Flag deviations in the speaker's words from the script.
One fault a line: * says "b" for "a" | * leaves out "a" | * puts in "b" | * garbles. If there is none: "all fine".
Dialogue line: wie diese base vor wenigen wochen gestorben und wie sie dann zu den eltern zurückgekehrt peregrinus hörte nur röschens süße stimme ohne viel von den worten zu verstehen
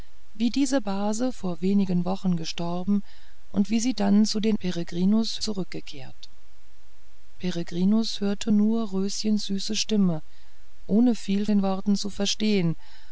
* says "peregrinus" for "eltern"
* leaves out "von"